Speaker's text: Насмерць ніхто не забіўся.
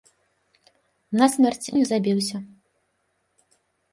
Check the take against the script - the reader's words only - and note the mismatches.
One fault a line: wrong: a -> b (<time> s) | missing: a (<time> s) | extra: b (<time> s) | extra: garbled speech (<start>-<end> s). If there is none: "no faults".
missing: ніхто (1.7 s)